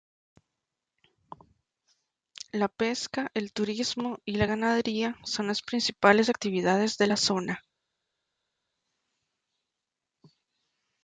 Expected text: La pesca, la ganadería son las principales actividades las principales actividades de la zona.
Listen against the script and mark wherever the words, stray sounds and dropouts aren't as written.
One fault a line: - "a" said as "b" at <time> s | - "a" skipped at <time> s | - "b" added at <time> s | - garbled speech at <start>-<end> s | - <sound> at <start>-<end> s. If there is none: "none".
- "el turismo y" added at 3.4 s
- "las principales actividades" skipped at 7.0 s